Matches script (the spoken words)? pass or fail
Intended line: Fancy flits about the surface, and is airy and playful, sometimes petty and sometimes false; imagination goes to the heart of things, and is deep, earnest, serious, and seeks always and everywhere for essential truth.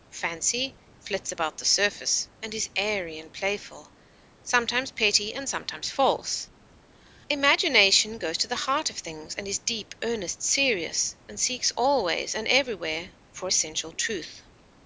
pass